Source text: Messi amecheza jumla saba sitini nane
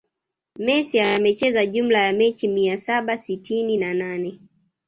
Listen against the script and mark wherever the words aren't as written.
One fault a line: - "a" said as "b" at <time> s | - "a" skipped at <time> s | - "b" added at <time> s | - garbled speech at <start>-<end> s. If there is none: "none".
- "ya mechi mia" added at 2.0 s
- "na" added at 3.8 s